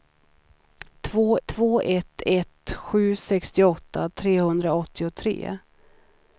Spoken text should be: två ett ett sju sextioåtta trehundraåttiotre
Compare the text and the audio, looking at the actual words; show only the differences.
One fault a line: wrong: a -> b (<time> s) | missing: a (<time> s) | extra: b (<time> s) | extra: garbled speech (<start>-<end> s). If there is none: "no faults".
extra: två (1.5 s)